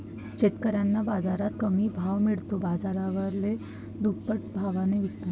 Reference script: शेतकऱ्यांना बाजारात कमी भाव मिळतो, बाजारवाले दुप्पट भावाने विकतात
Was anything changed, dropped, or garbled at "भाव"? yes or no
no